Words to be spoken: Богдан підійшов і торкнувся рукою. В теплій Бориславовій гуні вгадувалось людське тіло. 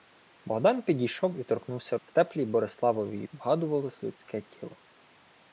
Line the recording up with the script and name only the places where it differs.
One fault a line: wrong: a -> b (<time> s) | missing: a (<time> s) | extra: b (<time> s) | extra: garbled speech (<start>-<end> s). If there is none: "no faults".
missing: рукою (2.0 s)
missing: гуні (3.2 s)